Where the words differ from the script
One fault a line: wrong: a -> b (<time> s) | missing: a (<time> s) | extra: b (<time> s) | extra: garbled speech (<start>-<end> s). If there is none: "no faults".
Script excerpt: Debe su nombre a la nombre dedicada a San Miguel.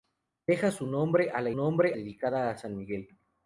no faults